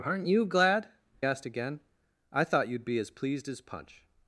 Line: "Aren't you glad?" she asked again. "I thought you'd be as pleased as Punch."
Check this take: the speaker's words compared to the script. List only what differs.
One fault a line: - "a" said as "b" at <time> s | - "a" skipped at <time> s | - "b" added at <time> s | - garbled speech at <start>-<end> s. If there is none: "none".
- "she" skipped at 0.9 s